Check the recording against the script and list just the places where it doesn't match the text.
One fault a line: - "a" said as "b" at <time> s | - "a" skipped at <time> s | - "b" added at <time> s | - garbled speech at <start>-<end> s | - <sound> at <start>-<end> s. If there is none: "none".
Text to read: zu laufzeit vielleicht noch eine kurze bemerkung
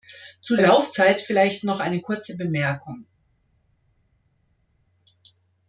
none